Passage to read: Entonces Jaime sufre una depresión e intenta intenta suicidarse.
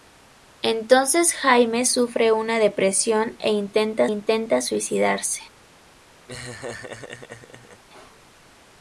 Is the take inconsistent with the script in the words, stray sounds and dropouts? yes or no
yes